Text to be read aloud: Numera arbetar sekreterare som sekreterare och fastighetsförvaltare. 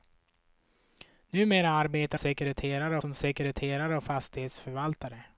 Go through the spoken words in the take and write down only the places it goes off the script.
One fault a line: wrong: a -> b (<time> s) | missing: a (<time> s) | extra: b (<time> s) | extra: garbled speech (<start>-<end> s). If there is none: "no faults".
no faults